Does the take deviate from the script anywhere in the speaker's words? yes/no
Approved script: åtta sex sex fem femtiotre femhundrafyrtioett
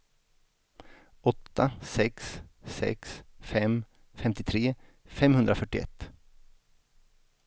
no